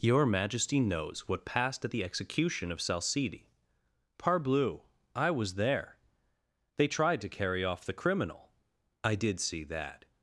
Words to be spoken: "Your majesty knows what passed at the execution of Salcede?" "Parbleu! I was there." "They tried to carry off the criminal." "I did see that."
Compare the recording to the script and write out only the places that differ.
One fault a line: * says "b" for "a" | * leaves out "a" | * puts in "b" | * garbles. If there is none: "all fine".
all fine